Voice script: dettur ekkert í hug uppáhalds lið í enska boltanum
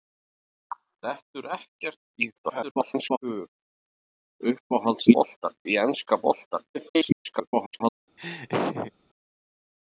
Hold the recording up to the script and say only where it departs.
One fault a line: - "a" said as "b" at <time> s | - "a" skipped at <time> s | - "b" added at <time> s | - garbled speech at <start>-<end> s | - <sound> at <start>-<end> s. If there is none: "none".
- garbled speech at 2.4-3.2 s
- "lið" said as "boltanum" at 5.2 s
- garbled speech at 6.7-8.0 s
- laugh at 8.2-8.9 s